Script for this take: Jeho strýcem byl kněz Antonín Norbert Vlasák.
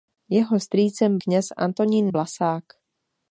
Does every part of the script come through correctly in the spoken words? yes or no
no